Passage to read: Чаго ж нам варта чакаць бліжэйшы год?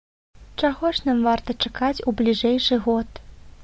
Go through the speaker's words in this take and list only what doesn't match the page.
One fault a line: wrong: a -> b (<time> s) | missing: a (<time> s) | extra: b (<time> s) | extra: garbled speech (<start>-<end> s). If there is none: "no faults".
extra: у (2.1 s)